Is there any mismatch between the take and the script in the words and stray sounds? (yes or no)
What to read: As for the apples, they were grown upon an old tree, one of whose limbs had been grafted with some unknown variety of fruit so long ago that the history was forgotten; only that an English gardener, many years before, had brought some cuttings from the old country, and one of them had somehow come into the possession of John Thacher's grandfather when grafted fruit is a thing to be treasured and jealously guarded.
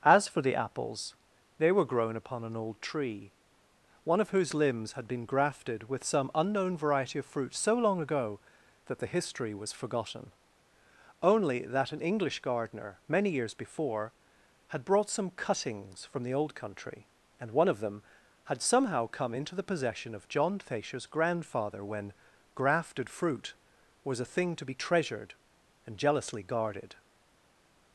yes